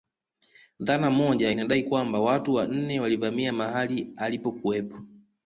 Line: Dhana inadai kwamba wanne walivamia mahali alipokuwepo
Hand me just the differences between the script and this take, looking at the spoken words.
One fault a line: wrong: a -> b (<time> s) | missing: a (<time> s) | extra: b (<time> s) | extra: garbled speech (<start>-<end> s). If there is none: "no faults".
extra: moja (1.1 s)
extra: watu (2.2 s)